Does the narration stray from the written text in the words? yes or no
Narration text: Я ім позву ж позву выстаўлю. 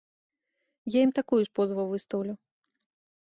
yes